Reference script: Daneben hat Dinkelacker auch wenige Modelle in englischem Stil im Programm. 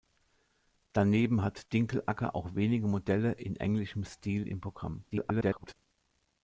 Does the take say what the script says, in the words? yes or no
no